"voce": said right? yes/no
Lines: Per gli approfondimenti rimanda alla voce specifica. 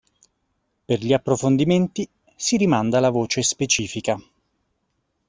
yes